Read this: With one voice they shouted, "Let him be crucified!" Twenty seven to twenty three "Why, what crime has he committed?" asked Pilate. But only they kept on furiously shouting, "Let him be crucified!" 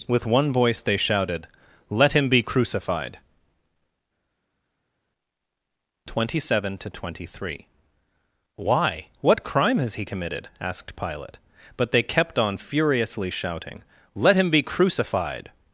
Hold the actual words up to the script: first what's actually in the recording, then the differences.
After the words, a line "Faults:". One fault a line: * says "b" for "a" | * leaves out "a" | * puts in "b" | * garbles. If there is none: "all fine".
With one voice they shouted, "Let him be crucified!" Twenty seven to twenty three "Why, what crime has he committed?" asked Pilate. But they kept on furiously shouting, "Let him be crucified!"
Faults:
* leaves out "only"